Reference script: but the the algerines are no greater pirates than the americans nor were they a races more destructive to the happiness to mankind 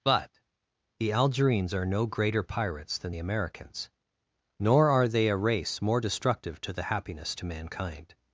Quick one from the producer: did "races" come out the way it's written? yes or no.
no